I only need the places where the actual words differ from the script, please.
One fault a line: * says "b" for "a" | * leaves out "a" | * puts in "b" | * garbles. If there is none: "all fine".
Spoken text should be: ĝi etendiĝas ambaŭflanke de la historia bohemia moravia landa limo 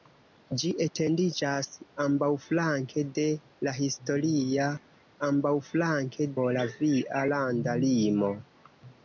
* says "ambaŭflanke" for "bohemia"